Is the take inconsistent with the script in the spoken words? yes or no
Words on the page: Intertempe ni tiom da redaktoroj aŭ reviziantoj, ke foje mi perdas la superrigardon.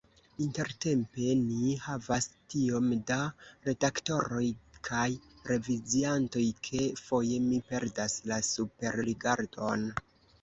yes